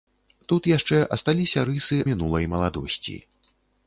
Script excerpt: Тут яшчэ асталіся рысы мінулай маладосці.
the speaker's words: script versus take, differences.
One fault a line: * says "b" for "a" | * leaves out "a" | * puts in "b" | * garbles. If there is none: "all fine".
all fine